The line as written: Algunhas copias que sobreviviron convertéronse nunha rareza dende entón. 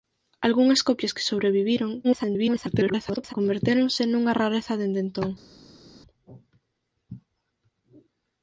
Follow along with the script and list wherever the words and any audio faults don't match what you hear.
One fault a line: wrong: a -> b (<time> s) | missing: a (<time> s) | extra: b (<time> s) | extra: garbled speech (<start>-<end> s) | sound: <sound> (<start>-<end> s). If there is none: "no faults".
extra: garbled speech (2.0-3.3 s)